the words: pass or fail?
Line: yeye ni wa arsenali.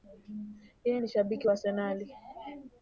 fail